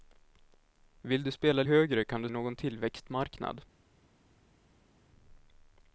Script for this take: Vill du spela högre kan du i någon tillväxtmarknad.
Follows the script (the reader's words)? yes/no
yes